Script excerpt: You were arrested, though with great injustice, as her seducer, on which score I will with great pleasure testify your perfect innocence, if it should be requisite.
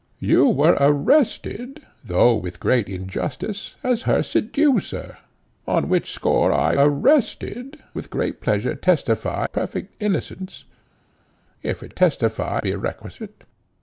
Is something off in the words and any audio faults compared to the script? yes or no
yes